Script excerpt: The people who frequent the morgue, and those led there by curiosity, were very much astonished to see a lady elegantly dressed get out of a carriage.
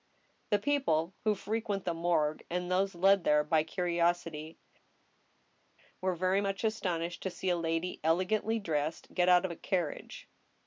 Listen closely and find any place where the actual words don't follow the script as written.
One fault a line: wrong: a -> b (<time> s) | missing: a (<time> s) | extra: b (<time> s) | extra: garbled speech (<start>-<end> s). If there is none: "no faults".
no faults